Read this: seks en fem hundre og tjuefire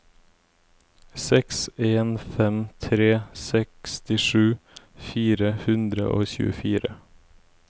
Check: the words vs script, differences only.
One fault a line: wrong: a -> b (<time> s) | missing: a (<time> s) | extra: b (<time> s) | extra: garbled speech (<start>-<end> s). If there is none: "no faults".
extra: tre sekstisju fire (2.8 s)